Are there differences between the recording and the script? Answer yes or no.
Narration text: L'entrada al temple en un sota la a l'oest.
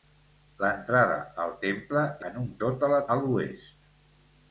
no